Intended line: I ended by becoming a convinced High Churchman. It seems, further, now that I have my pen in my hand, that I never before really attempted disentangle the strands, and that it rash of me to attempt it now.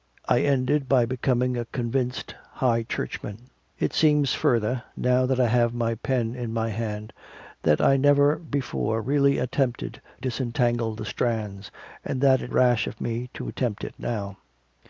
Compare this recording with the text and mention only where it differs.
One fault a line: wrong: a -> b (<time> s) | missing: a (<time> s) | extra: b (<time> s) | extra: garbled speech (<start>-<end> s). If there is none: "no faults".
no faults